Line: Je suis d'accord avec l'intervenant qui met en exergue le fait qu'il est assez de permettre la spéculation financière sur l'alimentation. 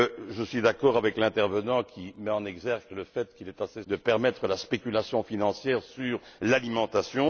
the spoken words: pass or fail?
pass